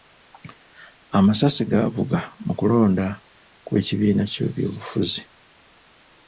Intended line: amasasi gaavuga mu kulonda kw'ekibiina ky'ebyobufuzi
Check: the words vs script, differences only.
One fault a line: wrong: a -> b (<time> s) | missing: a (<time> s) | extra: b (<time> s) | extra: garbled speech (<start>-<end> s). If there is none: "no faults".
no faults